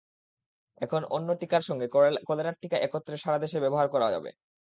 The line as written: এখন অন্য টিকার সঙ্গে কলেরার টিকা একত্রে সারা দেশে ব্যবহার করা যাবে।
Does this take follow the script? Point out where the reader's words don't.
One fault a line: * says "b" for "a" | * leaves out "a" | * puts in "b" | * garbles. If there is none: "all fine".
all fine